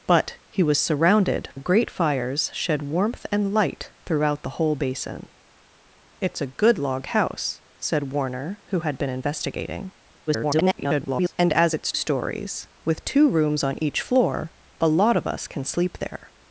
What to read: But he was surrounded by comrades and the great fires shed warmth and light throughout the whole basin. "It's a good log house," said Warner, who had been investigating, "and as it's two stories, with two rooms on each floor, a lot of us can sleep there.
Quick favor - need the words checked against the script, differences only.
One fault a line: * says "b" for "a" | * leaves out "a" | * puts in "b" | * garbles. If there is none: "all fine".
* leaves out "by comrades and"
* garbles
* leaves out "two"